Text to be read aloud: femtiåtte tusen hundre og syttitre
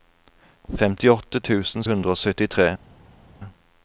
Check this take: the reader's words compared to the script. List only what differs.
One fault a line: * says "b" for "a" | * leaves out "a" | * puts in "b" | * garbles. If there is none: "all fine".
all fine